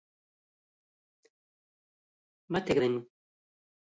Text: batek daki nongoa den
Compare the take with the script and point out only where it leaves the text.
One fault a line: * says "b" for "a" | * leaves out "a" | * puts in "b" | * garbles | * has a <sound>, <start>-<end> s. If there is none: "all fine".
* leaves out "daki nongoa"